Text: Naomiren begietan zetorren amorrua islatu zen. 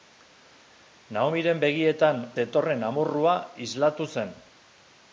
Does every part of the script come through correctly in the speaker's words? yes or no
yes